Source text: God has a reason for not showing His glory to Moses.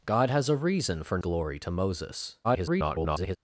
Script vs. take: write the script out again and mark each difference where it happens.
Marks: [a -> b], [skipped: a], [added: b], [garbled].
God has a reason for [skipped: not showing His] glory to Moses. [garbled]